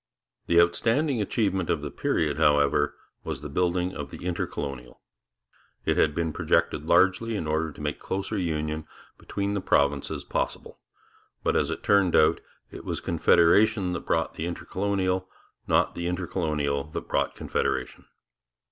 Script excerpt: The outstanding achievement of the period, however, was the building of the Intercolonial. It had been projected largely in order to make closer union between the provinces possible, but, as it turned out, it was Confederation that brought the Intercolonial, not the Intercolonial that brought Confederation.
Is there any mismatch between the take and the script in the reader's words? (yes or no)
no